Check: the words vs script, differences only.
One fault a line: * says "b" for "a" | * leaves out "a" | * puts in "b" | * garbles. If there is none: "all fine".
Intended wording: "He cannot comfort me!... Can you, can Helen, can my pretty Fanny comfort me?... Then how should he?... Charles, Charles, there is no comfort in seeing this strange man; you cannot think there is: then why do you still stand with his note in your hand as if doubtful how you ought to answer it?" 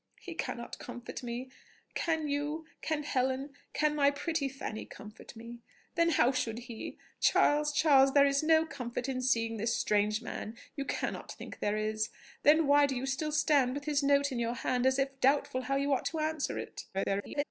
* garbles